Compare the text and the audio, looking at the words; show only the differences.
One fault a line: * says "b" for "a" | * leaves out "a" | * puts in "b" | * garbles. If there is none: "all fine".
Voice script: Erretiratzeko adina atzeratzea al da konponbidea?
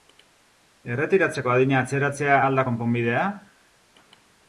all fine